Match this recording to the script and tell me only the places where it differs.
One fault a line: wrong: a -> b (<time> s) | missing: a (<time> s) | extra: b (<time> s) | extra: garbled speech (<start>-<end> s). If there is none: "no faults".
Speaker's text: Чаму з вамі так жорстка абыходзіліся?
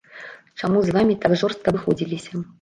no faults